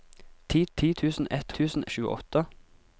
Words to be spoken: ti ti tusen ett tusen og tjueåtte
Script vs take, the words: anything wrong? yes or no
no